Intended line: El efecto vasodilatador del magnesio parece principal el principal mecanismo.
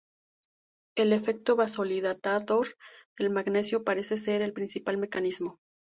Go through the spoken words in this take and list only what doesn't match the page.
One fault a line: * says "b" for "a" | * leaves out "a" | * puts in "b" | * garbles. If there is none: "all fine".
* says "ser" for "principal"